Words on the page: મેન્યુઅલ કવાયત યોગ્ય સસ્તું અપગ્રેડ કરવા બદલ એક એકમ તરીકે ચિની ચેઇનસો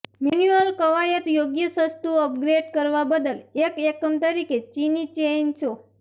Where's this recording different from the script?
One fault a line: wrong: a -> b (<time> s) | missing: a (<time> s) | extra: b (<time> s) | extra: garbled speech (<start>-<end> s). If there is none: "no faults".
no faults